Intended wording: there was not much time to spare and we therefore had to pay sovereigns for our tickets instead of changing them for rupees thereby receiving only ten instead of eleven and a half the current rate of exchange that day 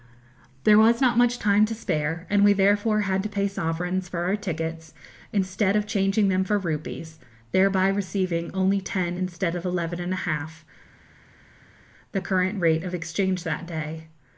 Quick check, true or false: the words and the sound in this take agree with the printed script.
true